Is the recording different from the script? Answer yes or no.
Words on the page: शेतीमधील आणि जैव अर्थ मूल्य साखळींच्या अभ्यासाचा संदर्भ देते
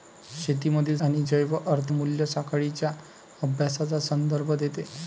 no